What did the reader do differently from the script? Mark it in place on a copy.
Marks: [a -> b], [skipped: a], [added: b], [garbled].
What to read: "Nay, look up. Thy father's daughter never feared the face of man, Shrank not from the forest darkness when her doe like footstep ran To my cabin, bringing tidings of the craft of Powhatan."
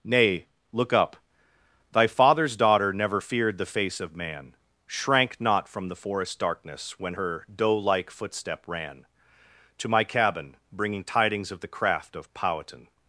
"Nay, look up. Thy father's daughter never feared the face of man, Shrank not from the forest darkness when her doe like footstep ran To my cabin, bringing tidings of the craft of Powhatan."